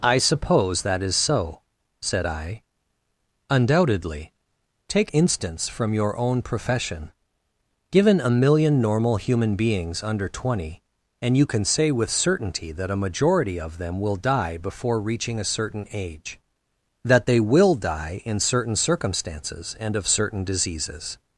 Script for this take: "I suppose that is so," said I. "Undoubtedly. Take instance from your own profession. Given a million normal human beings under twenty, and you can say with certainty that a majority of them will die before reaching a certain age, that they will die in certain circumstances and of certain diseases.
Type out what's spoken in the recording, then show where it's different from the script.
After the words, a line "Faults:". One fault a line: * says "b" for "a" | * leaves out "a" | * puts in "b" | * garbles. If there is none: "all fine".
"I suppose that is so," said I. "Undoubtedly. Take instance from your own profession. Given a million normal human beings under twenty, and you can say with certainty that a majority of them will die before reaching a certain age, that they will die in certain circumstances and of certain diseases.
Faults:
all fine